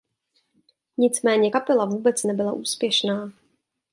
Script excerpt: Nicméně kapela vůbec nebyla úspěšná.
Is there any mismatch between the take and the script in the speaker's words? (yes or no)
no